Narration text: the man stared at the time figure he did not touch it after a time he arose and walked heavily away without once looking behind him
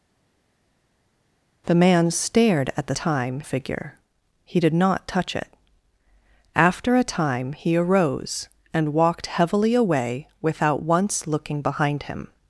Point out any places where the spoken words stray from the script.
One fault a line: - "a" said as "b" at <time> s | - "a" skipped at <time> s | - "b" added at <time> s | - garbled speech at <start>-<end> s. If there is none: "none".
none